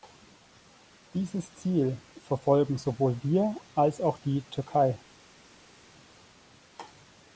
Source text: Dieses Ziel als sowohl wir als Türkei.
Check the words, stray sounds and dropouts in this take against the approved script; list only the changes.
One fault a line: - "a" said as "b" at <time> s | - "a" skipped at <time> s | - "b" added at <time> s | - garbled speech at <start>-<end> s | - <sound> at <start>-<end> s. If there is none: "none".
- "als" said as "verfolgen" at 2.3 s
- "auch die" added at 4.0 s